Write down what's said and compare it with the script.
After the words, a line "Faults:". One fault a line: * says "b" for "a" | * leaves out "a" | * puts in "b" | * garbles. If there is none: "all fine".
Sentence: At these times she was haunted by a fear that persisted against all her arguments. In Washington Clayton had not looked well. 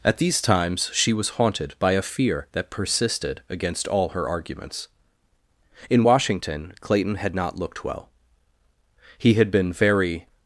At these times she was haunted by a fear that persisted against all her arguments. In Washington Clayton had not looked well. He had been very
Faults:
* puts in "He had been very"